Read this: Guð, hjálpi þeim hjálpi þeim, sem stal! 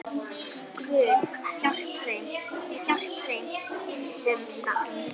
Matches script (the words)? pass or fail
pass